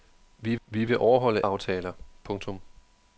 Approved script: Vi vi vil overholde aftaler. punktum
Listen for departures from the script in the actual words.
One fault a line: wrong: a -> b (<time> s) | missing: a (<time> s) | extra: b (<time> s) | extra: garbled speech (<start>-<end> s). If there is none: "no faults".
no faults